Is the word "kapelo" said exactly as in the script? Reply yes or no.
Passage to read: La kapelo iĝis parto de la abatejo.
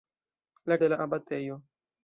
no